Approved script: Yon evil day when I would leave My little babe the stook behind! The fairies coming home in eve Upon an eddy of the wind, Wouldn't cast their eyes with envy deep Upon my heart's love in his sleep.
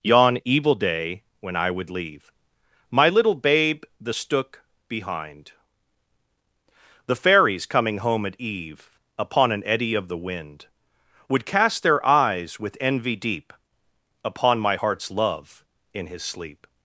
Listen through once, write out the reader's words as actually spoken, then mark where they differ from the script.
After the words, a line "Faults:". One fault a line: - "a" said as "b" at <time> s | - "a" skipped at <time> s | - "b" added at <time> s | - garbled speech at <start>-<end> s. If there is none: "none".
Yon evil day when I would leave My little babe the stook behind! The fairies coming home at eve Upon an eddy of the wind, Would cast their eyes with envy deep Upon my heart's love in his sleep.
Faults:
- "in" said as "at" at 8.2 s
- "Wouldn't" said as "Would" at 11.3 s